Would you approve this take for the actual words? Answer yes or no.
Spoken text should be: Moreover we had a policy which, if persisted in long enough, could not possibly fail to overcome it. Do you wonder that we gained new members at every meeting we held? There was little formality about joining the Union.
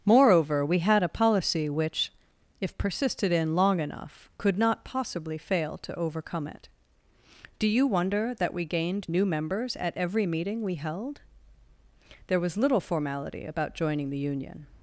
yes